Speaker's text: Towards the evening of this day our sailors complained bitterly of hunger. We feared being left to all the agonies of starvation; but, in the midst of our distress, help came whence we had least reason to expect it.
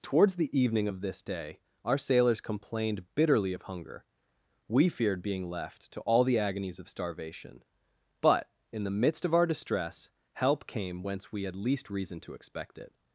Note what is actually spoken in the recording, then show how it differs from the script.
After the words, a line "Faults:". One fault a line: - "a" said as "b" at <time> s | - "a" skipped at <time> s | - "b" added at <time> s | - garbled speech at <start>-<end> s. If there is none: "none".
Towards the evening of this day our sailors complained bitterly of hunger. We feared being left to all the agonies of starvation; but, in the midst of our distress, help came whence we had least reason to expect it.
Faults:
none